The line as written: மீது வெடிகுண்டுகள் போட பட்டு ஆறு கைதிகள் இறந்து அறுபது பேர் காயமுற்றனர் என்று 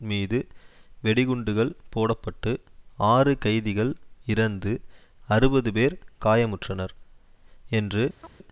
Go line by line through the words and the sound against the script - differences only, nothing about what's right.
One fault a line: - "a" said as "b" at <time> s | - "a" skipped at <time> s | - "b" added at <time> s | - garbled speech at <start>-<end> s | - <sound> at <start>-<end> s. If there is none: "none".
- chirp at 8.2-8.3 s